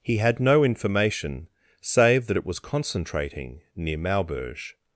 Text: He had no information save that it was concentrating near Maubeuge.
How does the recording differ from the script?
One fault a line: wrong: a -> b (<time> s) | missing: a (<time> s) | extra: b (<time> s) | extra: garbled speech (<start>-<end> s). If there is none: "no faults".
no faults